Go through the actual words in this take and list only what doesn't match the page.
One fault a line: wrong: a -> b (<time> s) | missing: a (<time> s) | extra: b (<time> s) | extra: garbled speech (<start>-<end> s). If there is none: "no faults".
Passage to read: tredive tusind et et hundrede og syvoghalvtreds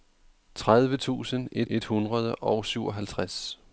no faults